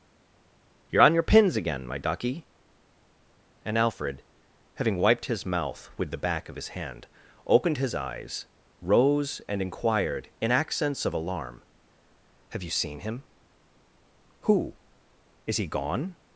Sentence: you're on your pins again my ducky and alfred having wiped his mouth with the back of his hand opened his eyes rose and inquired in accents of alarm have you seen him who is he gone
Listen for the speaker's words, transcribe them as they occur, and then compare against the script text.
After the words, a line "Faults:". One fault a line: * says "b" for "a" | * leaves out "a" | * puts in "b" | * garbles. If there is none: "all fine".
you're on your pins again my ducky and alfred having wiped his mouth with the back of his hand opened his eyes rose and inquired in accents of alarm have you seen him who is he gone
Faults:
all fine